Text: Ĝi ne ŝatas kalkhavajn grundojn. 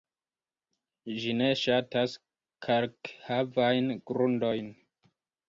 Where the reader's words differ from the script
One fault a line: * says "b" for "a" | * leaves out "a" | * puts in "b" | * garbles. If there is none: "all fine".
all fine